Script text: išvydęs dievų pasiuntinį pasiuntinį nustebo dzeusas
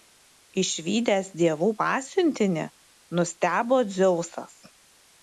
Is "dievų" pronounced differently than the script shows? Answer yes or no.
no